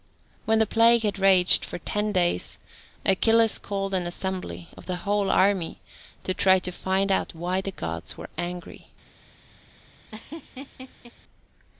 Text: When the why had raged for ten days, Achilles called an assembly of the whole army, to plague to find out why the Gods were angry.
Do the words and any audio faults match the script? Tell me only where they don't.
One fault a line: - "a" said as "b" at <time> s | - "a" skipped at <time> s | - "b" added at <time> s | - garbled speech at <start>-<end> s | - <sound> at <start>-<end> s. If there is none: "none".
- "why" said as "plague" at 0.7 s
- "plague" said as "try" at 6.3 s
- laugh at 10.1-11.1 s